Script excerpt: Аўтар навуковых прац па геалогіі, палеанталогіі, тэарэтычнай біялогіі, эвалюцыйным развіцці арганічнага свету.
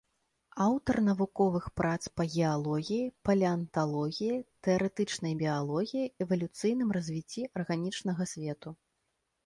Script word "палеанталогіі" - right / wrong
right